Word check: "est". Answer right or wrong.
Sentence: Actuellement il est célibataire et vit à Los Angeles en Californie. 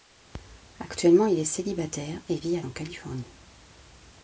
right